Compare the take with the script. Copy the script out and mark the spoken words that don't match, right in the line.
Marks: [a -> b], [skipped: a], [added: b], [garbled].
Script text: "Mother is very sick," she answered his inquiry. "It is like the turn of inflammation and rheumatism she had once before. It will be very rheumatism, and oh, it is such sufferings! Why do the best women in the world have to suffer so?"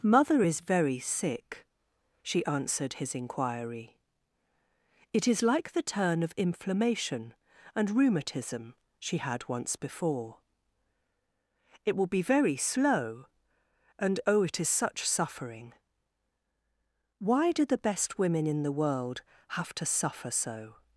"Mother is very sick," she answered his inquiry. "It is like the turn of inflammation and rheumatism she had once before. It will be very [rheumatism, -> slow] and oh, it is such [sufferings! -> suffering] Why do the best women in the world have to suffer so?"